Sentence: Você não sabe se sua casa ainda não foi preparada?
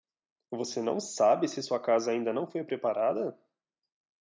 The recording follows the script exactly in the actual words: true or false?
true